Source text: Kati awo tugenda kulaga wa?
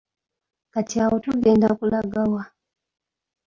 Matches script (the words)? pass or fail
pass